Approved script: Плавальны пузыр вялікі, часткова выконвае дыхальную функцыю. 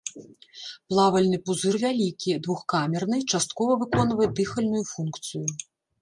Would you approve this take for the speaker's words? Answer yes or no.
no